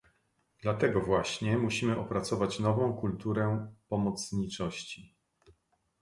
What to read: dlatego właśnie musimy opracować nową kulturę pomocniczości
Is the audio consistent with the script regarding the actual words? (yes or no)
yes